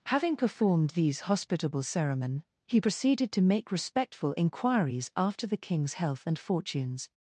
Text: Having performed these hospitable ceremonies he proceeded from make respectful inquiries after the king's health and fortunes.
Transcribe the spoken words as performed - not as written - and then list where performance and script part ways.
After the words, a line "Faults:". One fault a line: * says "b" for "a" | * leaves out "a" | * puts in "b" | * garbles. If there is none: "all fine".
Having performed these hospitable ceremonies he proceeded to make respectful inquiries after the king's health and fortunes.
Faults:
* says "to" for "from"